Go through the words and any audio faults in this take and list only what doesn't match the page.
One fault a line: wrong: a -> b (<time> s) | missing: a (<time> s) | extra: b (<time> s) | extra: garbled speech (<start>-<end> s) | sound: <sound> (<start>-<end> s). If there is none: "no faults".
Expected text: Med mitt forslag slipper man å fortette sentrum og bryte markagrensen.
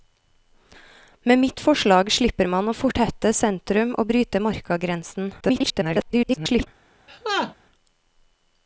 extra: garbled speech (5.4-6.7 s)
sound: laugh (7.1-7.5 s)